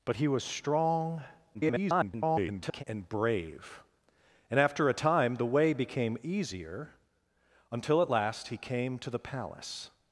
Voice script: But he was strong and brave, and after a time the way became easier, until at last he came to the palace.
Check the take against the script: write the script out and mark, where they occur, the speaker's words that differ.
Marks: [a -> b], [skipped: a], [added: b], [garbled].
But he was strong [garbled] and brave, and after a time the way became easier, until at last he came to the palace.